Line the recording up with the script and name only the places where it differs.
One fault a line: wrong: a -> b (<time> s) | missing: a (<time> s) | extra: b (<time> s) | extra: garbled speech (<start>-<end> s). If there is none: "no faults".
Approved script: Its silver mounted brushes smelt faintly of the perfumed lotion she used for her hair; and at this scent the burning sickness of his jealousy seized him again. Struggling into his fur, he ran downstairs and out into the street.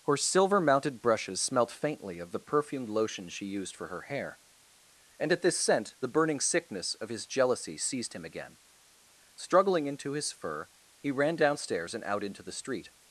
wrong: Its -> Her (0.1 s)